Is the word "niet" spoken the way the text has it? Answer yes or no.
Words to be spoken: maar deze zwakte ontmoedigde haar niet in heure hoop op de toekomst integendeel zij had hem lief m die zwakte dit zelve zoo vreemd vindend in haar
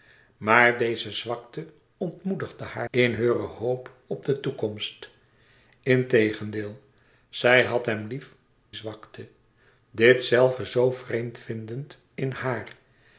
no